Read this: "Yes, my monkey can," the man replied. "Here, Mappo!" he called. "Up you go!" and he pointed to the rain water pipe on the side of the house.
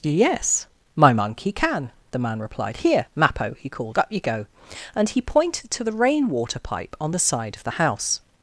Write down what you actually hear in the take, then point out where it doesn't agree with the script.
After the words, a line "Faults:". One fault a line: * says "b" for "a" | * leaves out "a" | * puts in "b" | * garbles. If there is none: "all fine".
"Yes, my monkey can," the man replied. "Here, Mappo!" he called. "Up you go!" and he pointed to the rain water pipe on the side of the house.
Faults:
all fine